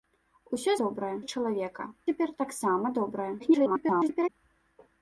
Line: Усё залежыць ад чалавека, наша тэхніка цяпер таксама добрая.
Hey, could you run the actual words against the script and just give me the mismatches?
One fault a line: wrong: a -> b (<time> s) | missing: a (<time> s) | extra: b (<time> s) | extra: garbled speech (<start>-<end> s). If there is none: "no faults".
wrong: залежыць -> добрая (0.9 s)
missing: наша тэхніка (1.9 s)
extra: garbled speech (3.4-4.3 s)